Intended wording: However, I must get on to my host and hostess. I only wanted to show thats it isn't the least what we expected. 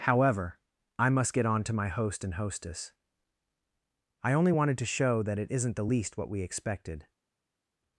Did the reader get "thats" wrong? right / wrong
wrong